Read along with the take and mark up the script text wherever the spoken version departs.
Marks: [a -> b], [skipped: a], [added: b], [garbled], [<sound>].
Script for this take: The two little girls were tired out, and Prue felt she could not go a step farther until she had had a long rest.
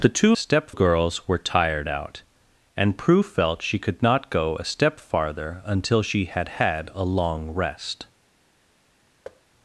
The two [little -> step] girls were tired out, and Prue felt she could not go a step farther until she had had a long rest. [thud]